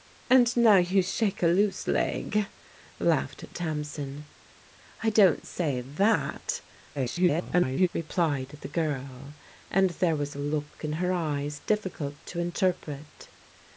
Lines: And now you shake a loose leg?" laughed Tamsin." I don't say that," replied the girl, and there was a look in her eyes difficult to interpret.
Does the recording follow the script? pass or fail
fail